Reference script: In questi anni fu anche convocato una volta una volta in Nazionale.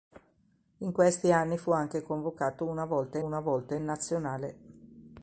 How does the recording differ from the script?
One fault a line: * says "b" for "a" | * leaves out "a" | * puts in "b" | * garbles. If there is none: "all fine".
all fine